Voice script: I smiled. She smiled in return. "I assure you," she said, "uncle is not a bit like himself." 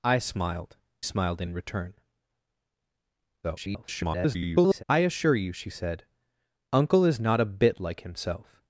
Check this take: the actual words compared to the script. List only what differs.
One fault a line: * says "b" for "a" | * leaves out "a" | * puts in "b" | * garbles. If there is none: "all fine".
* leaves out "She"
* garbles